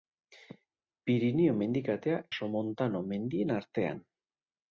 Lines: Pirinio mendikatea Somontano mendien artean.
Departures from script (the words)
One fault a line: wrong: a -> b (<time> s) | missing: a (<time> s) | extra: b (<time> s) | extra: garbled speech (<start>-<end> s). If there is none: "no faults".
no faults